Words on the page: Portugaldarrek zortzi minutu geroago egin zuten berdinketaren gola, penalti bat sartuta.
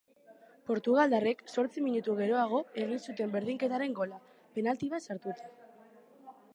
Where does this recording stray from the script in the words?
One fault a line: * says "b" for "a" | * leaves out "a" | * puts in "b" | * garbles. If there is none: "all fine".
all fine